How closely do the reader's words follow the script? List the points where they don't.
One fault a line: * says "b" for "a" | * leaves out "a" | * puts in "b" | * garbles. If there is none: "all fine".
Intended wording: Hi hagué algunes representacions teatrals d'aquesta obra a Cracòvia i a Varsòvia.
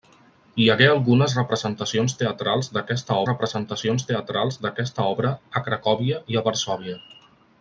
* puts in "representacions teatrals d'aquesta"